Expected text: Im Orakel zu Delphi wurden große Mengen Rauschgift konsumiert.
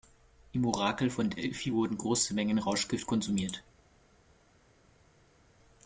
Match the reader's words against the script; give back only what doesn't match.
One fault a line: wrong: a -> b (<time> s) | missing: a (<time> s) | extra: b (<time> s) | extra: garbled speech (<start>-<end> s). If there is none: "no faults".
wrong: zu -> von (1.1 s)